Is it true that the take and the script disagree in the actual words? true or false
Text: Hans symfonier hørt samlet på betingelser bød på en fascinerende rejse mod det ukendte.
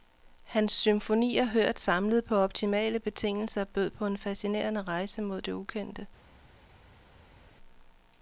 true